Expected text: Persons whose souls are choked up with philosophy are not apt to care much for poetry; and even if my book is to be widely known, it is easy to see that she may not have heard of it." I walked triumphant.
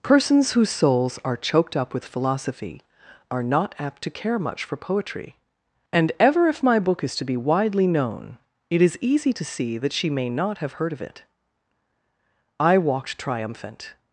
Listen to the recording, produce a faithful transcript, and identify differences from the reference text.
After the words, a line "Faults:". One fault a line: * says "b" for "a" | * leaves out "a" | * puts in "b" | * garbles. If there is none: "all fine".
Persons whose souls are choked up with philosophy are not apt to care much for poetry; and ever if my book is to be widely known, it is easy to see that she may not have heard of it." I walked triumphant.
Faults:
* says "ever" for "even"